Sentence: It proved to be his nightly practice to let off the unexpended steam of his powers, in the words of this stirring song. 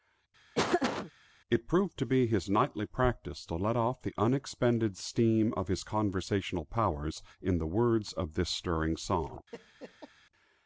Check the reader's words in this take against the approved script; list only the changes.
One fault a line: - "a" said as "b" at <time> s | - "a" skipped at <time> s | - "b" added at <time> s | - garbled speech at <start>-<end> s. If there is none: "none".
- "conversational" added at 5.8 s